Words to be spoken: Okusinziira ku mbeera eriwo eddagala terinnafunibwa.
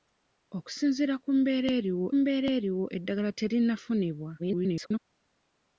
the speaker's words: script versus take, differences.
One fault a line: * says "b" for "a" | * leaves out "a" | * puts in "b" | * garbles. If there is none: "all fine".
* puts in "mbeera eriwo"
* garbles